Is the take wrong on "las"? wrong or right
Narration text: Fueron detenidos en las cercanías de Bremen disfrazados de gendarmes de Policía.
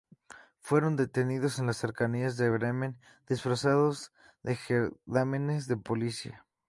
right